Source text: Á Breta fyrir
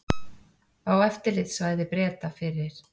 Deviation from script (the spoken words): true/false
true